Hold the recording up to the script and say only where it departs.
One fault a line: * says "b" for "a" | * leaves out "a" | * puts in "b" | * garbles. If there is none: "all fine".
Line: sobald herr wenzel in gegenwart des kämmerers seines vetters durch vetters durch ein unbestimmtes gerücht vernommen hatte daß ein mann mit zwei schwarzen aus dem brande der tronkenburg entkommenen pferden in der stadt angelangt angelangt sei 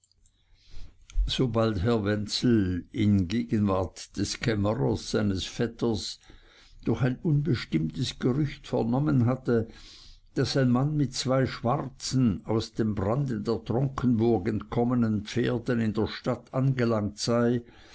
* leaves out "vetters durch"
* leaves out "angelangt"